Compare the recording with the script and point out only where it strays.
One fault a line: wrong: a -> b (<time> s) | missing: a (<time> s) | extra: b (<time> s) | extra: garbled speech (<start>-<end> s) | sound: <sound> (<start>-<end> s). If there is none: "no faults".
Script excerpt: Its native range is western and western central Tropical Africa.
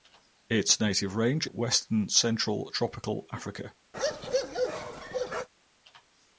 missing: is western and (1.4 s)
sound: bark (3.9-5.5 s)